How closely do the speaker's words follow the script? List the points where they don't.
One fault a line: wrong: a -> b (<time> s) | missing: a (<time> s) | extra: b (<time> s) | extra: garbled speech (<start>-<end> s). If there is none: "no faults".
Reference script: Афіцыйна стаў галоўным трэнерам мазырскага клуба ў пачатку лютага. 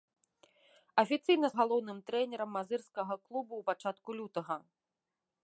missing: стаў (1.5 s)